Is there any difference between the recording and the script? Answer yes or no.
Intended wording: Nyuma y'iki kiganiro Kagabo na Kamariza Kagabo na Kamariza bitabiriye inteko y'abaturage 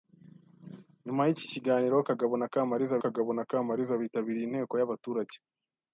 no